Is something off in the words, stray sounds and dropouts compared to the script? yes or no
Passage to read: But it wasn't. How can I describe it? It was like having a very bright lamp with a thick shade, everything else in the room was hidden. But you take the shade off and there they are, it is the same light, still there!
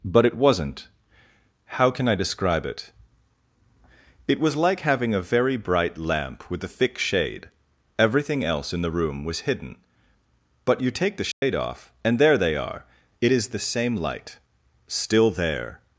yes